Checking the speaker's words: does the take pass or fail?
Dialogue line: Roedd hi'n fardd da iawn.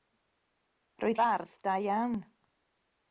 fail